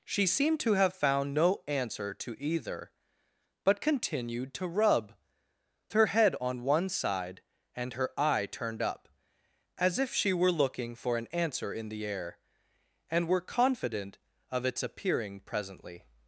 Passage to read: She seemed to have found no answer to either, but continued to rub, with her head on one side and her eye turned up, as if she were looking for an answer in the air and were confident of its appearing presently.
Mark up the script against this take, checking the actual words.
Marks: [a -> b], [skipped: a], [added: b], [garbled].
She seemed to have found no answer to either, but continued to rub, [skipped: with] her head on one side and her eye turned up, as if she were looking for an answer in the air and were confident of its appearing presently.